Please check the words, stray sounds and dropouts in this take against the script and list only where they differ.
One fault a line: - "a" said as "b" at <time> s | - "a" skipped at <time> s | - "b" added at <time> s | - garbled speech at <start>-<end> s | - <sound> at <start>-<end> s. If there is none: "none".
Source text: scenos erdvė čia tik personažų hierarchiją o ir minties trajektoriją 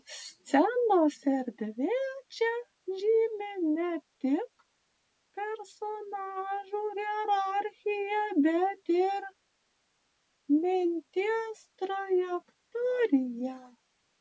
- "žymi ne" added at 3.0 s
- "o" said as "bet" at 8.5 s